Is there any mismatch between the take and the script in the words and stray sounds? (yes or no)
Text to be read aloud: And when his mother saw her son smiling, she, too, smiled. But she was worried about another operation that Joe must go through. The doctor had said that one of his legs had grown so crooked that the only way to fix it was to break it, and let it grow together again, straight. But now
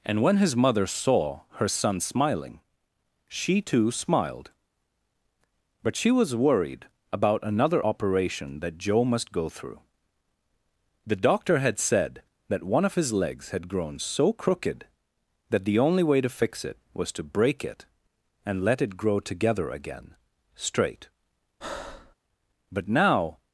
yes